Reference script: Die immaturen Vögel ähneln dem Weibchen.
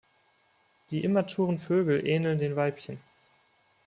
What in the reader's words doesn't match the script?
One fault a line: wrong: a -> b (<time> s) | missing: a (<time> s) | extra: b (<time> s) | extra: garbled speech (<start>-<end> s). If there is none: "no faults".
wrong: dem -> den (2.4 s)